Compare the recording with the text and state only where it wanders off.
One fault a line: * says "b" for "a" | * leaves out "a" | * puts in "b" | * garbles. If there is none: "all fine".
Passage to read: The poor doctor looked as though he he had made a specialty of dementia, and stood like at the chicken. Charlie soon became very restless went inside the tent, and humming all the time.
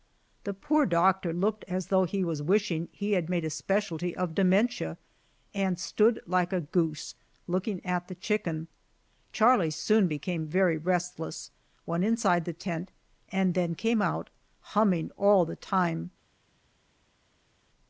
* puts in "was wishing"
* puts in "a goose looking"
* puts in "then came out"